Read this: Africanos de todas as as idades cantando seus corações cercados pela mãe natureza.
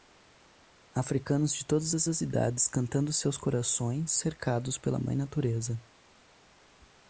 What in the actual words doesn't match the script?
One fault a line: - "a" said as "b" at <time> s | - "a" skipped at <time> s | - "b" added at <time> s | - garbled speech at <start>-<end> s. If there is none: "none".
none